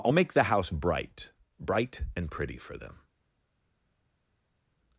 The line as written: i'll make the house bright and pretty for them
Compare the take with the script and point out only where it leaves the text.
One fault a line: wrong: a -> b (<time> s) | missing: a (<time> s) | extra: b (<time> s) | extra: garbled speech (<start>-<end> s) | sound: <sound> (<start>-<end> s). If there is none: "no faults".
extra: bright (1.6 s)